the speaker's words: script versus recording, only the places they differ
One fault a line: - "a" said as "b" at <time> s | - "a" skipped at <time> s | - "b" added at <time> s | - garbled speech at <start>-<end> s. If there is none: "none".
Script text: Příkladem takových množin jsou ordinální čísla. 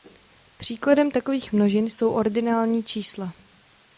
none